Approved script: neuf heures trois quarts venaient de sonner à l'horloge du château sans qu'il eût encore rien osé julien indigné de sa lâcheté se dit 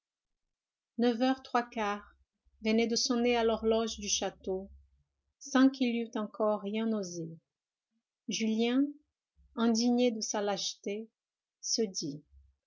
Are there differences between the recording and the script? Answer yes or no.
no